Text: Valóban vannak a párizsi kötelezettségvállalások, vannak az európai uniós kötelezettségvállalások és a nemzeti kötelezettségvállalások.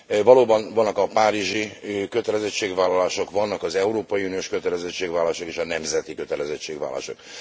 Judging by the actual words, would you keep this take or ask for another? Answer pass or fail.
pass